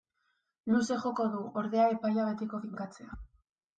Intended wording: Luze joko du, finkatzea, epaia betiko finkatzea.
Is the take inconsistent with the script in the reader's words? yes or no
yes